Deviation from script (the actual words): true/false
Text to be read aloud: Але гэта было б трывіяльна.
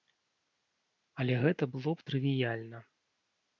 false